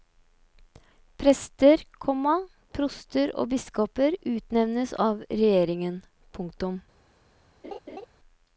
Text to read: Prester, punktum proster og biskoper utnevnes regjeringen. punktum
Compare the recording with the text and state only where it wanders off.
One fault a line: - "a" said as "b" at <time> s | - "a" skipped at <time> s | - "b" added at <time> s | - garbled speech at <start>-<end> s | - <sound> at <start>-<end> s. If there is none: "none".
- "punktum" said as "komma" at 2.0 s
- "av" added at 5.1 s
- laugh at 7.6-8.1 s